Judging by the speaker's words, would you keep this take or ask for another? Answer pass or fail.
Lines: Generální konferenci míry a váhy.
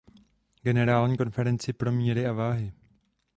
fail